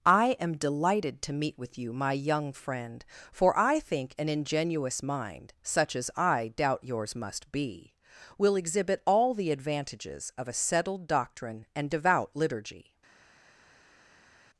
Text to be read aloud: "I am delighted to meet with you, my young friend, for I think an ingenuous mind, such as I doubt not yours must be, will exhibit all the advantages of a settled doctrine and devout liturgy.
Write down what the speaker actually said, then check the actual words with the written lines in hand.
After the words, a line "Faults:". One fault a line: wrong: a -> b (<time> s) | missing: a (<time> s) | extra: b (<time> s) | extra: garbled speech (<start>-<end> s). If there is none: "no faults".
"I am delighted to meet with you, my young friend, for I think an ingenuous mind, such as I doubt yours must be, will exhibit all the advantages of a settled doctrine and devout liturgy.
Faults:
missing: not (6.8 s)